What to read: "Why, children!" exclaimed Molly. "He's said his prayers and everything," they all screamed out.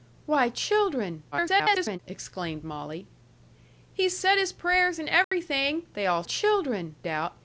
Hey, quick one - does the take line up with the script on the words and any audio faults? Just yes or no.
no